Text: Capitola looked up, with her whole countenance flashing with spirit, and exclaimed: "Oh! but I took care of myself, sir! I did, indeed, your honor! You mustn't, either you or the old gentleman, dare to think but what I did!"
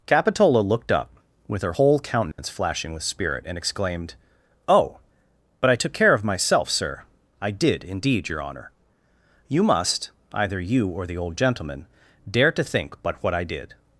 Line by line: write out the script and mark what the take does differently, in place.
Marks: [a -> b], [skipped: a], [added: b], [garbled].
Capitola looked up, with her whole countenance flashing with spirit, and exclaimed: "Oh! but I took care of myself, sir! I did, indeed, your honor! You [mustn't, -> must] either you or the old gentleman, dare to think but what I did!"